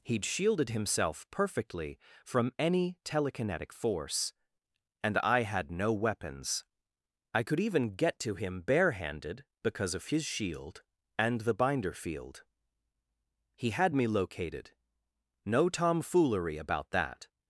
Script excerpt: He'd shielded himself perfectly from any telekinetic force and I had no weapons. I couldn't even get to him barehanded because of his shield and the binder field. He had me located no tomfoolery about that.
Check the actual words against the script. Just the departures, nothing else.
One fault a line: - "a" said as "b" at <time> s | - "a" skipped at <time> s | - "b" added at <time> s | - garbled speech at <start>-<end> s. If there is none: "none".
- "couldn't" said as "could" at 7.4 s